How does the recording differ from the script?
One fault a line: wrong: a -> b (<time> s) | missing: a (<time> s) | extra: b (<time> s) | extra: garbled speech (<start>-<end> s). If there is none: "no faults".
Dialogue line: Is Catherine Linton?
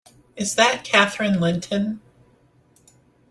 extra: that (0.6 s)